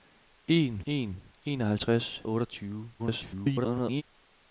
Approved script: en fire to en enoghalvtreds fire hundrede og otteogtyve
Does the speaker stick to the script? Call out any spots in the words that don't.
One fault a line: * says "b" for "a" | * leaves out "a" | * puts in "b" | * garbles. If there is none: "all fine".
* leaves out "fire to"
* leaves out "fire hundrede"
* garbles